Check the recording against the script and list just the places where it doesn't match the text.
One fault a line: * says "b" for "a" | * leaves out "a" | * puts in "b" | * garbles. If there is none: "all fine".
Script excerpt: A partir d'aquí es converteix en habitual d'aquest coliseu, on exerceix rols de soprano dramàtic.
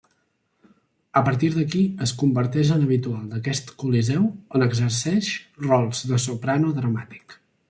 all fine